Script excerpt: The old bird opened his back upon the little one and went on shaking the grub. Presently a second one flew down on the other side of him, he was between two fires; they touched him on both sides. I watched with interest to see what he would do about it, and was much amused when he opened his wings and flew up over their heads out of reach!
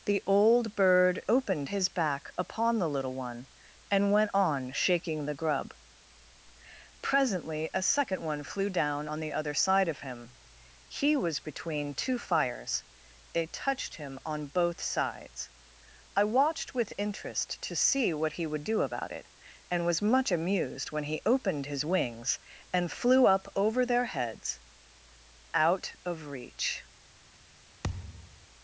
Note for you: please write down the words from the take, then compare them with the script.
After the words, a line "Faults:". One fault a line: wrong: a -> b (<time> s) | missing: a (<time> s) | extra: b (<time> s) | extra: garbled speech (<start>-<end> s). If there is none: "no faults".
The old bird opened his back upon the little one and went on shaking the grub. Presently a second one flew down on the other side of him, he was between two fires; they touched him on both sides. I watched with interest to see what he would do about it, and was much amused when he opened his wings and flew up over their heads out of reach!
Faults:
no faults